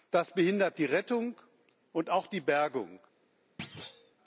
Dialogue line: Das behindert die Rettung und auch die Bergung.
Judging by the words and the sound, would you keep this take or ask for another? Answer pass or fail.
fail